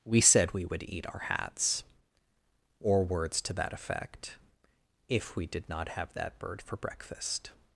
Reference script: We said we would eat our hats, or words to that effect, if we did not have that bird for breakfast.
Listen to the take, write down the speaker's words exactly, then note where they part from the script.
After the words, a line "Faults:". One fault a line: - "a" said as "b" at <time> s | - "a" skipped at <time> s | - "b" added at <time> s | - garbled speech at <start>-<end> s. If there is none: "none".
We said we would eat our hats, or words to that effect, if we did not have that bird for breakfast.
Faults:
none